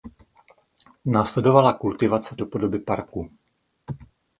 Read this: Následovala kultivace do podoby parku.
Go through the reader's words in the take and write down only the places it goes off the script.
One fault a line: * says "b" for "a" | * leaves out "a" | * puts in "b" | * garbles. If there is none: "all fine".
all fine